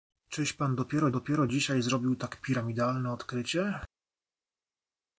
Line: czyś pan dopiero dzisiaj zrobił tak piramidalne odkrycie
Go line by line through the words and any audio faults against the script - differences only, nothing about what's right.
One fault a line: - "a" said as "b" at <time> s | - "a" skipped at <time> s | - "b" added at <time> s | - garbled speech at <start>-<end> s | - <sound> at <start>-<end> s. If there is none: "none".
- "dopiero" added at 1.1 s